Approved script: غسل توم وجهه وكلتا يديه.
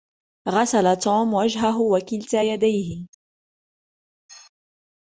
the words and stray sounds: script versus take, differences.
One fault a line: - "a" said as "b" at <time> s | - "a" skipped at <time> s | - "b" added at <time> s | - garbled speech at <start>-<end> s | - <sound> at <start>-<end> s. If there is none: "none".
none